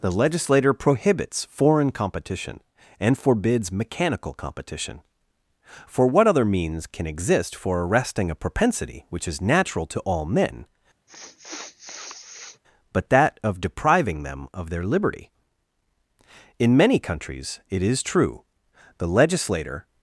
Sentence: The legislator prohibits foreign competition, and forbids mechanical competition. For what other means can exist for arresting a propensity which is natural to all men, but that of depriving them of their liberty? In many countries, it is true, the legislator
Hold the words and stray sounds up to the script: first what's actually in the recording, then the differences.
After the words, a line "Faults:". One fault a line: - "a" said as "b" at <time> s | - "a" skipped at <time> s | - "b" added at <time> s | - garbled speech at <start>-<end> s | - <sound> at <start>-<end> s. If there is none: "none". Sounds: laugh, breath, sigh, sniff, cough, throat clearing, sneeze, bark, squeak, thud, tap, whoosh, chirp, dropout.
The legislator prohibits foreign competition, and forbids mechanical competition. For what other means can exist for arresting a propensity which is natural to all men, but that of depriving them of their liberty? In many countries, it is true, the legislator
Faults:
- sniff at 11.1-12.6 s